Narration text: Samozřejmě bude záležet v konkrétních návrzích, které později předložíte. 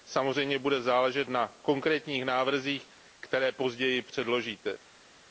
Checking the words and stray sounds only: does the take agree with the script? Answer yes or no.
no